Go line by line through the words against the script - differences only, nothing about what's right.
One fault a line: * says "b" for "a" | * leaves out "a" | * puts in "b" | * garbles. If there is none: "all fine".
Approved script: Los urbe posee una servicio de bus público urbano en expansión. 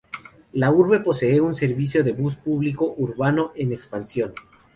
* says "La" for "Los"
* says "un" for "una"